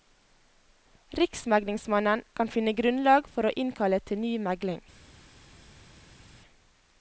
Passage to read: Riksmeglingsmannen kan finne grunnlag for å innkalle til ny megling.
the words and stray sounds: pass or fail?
pass